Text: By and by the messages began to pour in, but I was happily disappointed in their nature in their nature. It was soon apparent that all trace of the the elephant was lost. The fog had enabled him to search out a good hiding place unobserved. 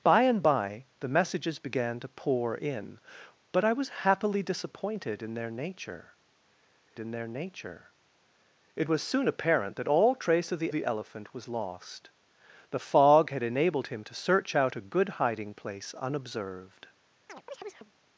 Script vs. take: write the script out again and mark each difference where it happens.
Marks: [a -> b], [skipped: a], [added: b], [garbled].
By and by the messages began to pour in, but I was happily disappointed in their nature in their nature. It was soon apparent that all trace of the the elephant was lost. The fog had enabled him to search out a good hiding place unobserved.